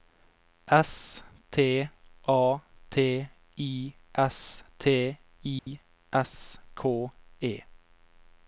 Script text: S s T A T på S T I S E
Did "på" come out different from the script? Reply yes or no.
yes